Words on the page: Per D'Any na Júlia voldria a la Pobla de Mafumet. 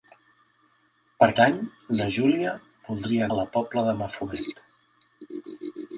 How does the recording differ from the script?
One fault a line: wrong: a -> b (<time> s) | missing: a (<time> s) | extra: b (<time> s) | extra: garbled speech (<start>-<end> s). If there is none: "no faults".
no faults